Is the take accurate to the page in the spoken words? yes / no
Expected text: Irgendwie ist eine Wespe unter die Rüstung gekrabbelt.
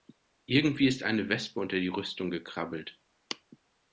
yes